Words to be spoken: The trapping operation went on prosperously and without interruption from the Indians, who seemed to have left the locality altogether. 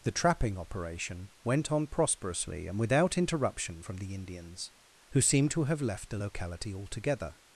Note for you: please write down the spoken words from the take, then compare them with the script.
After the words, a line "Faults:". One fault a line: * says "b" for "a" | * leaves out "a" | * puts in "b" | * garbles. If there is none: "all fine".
The trapping operation went on prosperously and without interruption from the Indians, who seemed to have left the locality altogether.
Faults:
all fine